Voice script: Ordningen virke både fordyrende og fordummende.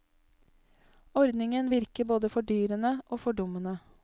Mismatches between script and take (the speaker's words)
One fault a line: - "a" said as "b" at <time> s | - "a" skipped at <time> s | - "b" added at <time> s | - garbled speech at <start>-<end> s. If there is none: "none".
none